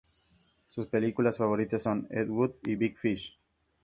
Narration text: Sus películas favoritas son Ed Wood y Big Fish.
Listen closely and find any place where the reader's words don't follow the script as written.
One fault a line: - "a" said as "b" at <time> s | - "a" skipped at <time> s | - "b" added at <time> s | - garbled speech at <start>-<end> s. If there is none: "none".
none